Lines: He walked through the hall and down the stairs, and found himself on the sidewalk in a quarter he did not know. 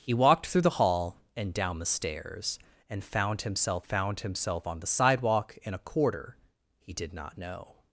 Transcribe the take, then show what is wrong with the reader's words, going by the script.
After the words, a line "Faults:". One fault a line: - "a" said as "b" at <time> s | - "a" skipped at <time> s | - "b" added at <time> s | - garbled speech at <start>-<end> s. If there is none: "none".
He walked through the hall and down the stairs, and found himself found himself on the sidewalk in a quarter he did not know.
Faults:
- "found himself" added at 3.8 s